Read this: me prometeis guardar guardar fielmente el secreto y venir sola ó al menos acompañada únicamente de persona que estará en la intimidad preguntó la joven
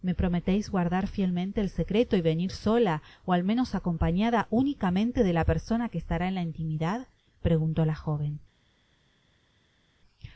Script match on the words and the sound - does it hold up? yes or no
no